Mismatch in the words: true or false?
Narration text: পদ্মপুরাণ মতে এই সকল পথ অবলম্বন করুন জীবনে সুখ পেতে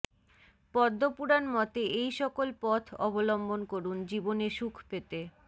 false